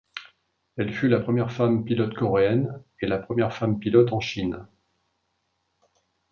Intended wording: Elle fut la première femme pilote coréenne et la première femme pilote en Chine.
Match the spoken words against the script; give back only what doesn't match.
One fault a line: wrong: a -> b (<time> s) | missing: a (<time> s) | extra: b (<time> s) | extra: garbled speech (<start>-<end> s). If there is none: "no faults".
no faults